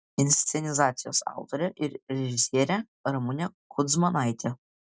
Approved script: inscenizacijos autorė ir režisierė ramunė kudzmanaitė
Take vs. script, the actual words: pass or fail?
pass